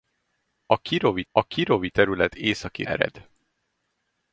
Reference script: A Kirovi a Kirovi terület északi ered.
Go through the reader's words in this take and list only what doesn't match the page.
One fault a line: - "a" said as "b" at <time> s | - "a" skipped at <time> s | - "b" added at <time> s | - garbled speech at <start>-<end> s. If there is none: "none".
none